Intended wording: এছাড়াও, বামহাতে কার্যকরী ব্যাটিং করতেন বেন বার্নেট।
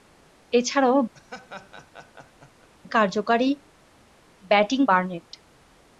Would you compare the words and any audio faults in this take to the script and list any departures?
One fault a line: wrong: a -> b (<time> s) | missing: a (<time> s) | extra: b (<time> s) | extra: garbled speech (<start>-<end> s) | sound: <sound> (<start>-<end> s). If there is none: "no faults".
missing: বামহাতে (1.0 s)
sound: laugh (1.1-2.7 s)
missing: করতেন বেন (4.8 s)